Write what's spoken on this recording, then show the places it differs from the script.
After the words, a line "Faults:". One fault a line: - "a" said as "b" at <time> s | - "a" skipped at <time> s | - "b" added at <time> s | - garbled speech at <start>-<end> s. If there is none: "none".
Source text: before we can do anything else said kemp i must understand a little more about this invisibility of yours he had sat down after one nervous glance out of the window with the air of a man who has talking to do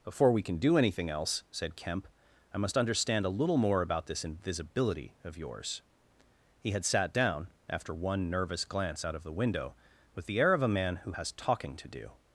before we can do anything else said kemp i must understand a little more about this invisibility of yours he had sat down after one nervous glance out of the window with the air of a man who has talking to do
Faults:
none